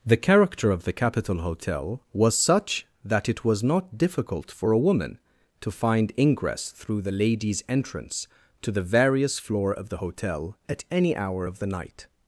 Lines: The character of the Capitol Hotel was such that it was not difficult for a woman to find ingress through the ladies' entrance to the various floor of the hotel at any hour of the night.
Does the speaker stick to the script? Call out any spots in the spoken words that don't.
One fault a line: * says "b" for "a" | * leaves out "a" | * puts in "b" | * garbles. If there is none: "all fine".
all fine